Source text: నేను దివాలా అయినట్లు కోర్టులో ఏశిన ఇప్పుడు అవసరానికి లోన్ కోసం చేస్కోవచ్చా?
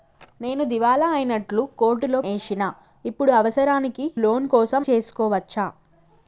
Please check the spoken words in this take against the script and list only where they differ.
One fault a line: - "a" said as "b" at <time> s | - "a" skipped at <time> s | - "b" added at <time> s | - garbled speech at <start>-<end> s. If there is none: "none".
none